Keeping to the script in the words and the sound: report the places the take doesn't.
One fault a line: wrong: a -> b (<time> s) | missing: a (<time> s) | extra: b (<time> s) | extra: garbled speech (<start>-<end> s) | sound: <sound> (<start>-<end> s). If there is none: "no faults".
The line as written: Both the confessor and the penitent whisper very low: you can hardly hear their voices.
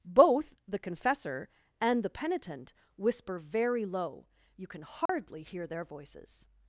sound: dropout (5.1-5.1 s)